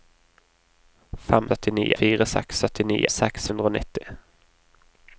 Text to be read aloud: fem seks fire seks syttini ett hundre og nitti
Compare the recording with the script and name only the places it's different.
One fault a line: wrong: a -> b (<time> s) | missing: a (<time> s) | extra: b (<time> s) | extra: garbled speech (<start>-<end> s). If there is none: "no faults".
wrong: seks -> syttini (1.5 s)
wrong: ett -> seks (3.1 s)